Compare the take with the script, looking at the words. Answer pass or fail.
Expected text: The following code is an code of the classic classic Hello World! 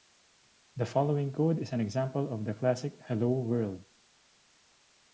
fail